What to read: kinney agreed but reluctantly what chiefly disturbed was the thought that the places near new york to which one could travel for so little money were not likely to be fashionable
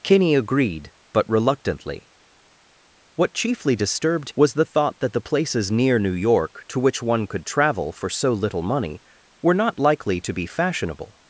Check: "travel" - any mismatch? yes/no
no